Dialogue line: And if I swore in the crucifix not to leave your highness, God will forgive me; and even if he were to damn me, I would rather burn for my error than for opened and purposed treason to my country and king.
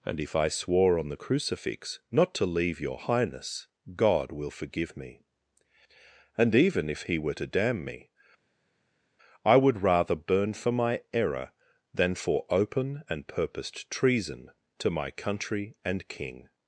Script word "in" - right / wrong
wrong